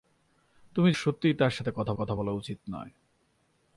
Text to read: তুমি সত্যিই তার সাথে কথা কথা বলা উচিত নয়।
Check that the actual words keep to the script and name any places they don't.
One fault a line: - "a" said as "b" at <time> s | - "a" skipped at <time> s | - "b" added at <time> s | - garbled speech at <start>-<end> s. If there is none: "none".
none